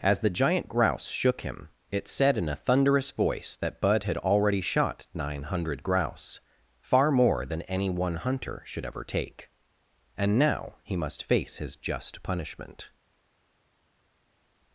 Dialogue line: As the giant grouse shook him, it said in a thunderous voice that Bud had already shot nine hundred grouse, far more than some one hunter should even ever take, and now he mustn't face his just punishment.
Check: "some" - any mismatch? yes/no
yes